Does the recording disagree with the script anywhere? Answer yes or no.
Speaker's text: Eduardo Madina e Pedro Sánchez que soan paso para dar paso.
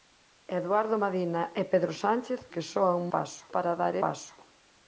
no